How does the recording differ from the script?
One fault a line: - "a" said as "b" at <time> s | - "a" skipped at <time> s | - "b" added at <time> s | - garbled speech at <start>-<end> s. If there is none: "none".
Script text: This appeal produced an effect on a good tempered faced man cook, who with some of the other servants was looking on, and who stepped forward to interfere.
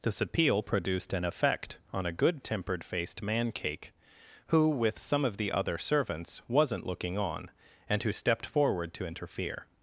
- "cook" said as "cake" at 3.5 s
- "was" said as "wasn't" at 6.5 s